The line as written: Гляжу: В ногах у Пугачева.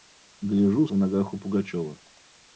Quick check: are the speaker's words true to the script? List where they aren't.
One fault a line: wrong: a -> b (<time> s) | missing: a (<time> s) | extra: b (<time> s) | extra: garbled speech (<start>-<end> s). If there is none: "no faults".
no faults